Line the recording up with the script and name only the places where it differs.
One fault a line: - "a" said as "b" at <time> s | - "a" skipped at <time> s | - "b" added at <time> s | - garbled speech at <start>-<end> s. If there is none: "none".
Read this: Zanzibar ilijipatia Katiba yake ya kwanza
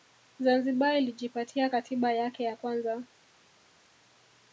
none